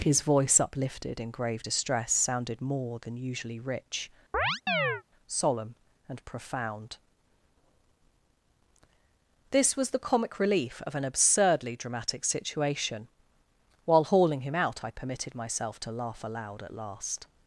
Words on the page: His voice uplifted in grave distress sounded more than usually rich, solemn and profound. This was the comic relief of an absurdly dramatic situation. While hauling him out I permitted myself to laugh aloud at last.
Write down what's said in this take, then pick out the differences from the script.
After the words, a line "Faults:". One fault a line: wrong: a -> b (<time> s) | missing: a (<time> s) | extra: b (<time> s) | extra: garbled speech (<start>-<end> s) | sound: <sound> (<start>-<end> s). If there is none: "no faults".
His voice uplifted in grave distress sounded more than usually rich, solemn and profound. This was the comic relief of an absurdly dramatic situation. While hauling him out I permitted myself to laugh aloud at last.
Faults:
sound: chirp (4.3-5.0 s)